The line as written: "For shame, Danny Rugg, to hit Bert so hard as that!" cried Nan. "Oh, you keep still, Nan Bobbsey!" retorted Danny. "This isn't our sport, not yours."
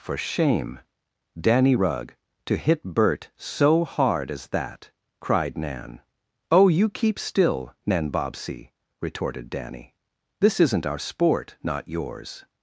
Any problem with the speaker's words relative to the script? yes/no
no